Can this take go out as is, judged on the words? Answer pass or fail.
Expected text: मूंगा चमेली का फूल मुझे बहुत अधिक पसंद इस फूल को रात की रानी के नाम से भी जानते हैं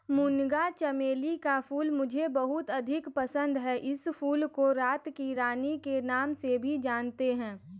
fail